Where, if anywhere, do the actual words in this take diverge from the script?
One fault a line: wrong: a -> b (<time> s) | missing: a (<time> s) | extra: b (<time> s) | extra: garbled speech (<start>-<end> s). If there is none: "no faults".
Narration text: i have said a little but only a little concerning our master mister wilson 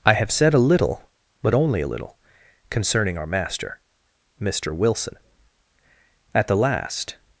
extra: at the last (6.3 s)